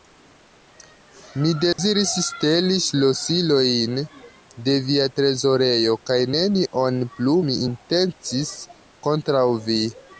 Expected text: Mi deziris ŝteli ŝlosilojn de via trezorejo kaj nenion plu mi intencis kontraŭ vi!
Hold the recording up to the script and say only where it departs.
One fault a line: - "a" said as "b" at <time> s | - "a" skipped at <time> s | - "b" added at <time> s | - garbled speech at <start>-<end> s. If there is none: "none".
none